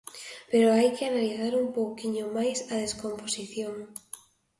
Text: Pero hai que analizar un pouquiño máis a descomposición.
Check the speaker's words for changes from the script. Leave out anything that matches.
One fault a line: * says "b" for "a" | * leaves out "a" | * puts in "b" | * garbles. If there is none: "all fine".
all fine